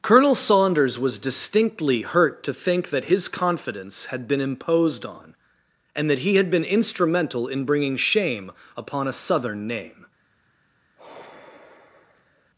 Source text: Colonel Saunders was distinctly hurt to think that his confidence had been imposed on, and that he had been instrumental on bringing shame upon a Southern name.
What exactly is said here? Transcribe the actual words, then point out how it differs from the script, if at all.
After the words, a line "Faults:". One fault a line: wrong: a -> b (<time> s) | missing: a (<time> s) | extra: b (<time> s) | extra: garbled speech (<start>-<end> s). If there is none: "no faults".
Colonel Saunders was distinctly hurt to think that his confidence had been imposed on, and that he had been instrumental in bringing shame upon a Southern name.
Faults:
wrong: on -> in (7.5 s)